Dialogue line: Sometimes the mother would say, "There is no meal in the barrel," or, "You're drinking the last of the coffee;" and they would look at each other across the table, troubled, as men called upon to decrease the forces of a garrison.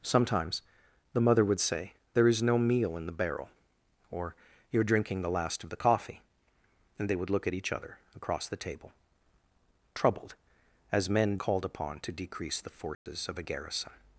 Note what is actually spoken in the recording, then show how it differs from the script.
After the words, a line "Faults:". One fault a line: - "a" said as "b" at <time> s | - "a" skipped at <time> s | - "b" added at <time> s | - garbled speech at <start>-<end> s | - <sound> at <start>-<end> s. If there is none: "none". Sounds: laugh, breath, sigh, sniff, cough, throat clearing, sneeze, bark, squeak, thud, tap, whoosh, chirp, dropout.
Sometimes the mother would say, "There is no meal in the barrel," or, "You're drinking the last of the coffee;" and they would look at each other across the table, troubled, as men called upon to decrease the forces of a garrison.
Faults:
- dropout at 12.9-13.1 s